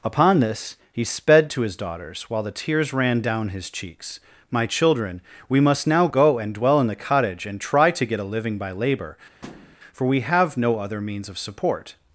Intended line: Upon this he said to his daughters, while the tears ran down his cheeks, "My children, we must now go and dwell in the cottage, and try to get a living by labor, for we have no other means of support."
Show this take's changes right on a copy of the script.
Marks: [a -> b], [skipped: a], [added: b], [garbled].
Upon this he [said -> sped] to his daughters, while the tears ran down his cheeks, "My children, we must now go and dwell in the cottage, and try to get a living by labor, for we have no other means of support."